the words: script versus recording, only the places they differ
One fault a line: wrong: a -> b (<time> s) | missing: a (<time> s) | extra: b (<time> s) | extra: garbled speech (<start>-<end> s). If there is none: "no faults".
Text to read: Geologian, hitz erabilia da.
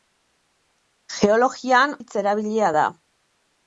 no faults